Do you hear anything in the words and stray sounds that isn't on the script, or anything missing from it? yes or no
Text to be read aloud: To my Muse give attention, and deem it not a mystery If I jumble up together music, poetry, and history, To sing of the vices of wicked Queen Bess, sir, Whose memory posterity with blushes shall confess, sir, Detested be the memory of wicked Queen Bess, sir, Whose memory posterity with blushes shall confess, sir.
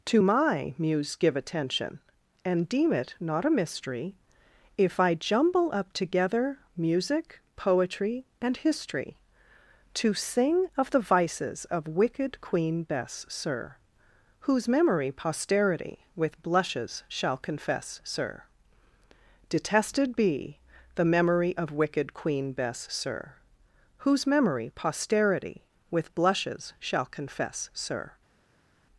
no